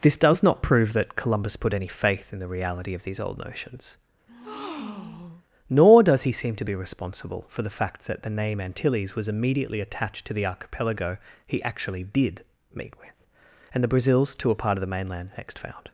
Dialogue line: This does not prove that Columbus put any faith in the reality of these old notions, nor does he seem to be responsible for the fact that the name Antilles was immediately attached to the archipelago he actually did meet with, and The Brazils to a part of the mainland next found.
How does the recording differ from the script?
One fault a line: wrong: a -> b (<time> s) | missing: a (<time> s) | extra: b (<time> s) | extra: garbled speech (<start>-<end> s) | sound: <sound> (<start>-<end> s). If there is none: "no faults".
sound: breath (4.3-5.4 s)